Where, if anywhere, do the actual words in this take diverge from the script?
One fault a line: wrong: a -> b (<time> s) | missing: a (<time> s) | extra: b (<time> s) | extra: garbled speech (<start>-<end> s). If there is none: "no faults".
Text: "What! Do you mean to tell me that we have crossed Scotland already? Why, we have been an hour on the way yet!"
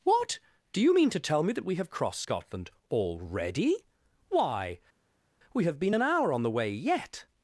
no faults